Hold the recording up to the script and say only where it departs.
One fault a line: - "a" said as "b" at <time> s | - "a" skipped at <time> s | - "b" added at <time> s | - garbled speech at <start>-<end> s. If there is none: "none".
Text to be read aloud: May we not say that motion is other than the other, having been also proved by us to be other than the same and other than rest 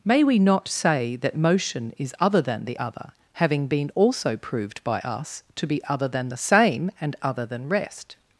none